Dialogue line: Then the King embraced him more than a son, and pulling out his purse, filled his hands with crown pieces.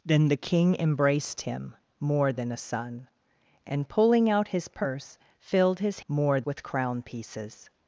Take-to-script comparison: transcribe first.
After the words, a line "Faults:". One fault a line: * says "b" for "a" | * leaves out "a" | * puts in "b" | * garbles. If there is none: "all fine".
Then the King embraced him more than a son, and pulling out his purse, filled his more with crown pieces.
Faults:
* says "more" for "hands"